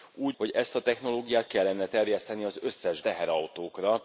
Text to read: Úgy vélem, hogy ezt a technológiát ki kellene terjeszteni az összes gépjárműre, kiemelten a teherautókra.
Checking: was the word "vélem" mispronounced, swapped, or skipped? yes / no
yes